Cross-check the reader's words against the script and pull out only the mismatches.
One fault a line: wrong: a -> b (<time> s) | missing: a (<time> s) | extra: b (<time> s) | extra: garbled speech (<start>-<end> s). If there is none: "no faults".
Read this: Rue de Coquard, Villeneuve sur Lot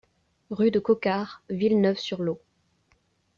no faults